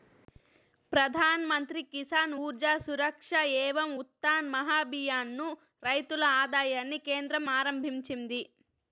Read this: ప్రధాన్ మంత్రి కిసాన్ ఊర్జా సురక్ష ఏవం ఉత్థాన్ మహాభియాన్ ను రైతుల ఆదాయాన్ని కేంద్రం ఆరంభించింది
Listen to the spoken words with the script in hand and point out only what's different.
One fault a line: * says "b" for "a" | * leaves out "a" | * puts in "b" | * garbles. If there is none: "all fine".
all fine